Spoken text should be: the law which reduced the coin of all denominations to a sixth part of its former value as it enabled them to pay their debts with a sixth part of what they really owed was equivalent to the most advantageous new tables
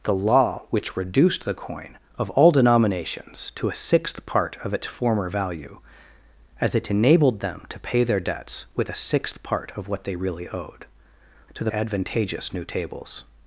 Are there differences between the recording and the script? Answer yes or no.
yes